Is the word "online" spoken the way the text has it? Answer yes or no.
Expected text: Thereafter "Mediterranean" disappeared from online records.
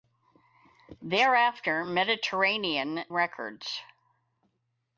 no